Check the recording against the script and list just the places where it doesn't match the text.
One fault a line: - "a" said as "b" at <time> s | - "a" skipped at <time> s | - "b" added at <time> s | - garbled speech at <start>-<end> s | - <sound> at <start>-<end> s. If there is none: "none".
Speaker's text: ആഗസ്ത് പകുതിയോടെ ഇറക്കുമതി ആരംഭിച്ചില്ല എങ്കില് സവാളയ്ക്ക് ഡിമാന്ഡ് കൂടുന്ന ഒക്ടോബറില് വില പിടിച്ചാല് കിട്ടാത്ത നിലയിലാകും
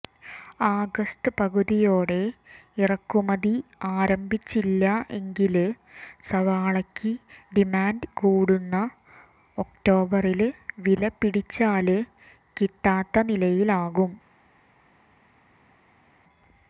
none